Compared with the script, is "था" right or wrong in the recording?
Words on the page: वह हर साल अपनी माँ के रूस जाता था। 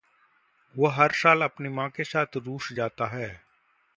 wrong